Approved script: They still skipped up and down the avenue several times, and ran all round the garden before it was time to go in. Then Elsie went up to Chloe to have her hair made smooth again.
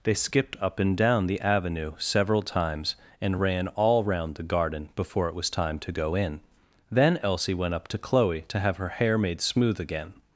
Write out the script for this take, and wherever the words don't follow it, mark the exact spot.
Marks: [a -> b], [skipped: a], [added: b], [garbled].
They [skipped: still] skipped up and down the avenue several times, and ran all round the garden before it was time to go in. Then Elsie went up to Chloe to have her hair made smooth again.